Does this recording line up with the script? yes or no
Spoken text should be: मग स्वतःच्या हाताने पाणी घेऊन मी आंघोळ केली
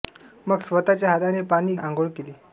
no